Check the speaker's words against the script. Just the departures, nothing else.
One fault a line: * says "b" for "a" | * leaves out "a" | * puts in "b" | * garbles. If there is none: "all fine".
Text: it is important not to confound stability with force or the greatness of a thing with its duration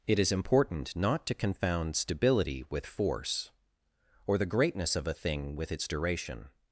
all fine